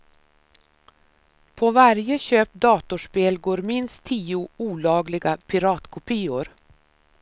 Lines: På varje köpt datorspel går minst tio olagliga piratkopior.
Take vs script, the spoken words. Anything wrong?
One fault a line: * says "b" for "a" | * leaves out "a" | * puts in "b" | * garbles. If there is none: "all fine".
all fine